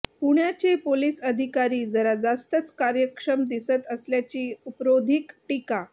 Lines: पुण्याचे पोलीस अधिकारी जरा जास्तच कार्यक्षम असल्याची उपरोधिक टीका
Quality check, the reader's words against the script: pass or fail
fail